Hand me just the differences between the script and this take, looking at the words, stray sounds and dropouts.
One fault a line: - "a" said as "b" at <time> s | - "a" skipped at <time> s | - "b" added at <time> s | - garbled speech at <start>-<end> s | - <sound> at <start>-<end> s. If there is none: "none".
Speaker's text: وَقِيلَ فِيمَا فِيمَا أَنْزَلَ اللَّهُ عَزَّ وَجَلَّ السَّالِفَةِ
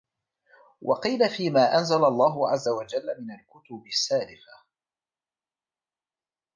- "فِيمَا" skipped at 1.8 s
- "مِنْ الْكُتُبِ" added at 3.2 s